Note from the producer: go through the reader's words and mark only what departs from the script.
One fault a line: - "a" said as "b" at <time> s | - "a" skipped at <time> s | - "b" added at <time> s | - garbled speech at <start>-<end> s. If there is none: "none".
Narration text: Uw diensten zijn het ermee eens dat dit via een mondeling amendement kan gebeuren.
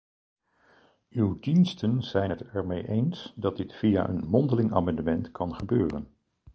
none